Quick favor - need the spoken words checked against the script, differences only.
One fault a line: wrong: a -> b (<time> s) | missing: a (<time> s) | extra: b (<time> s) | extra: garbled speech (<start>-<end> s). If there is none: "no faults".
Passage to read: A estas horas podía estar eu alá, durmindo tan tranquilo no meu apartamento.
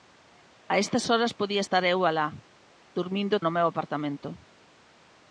missing: tan tranquilo (3.4 s)